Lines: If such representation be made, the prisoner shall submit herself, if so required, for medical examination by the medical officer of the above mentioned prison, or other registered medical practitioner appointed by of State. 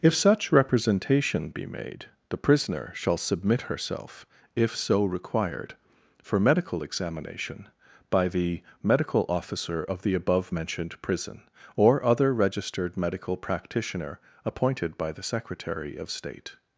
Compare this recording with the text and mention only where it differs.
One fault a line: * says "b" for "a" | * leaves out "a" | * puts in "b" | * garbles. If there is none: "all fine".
* puts in "the Secretary"